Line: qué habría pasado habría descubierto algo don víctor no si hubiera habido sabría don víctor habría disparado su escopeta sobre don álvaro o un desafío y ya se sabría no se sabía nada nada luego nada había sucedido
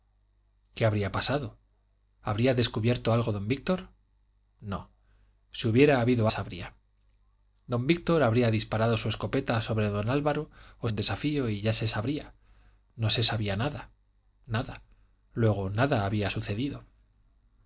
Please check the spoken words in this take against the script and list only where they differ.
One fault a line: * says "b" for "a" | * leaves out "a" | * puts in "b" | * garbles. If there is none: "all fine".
all fine